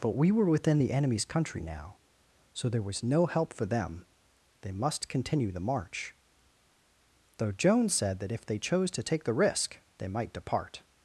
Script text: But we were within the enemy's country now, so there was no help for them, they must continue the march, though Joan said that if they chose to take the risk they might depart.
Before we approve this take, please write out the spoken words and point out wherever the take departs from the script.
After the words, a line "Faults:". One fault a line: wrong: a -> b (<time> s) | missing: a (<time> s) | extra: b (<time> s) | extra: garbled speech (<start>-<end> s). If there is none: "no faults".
But we were within the enemy's country now, so there was no help for them, they must continue the march, though Joan said that if they chose to take the risk they might depart.
Faults:
no faults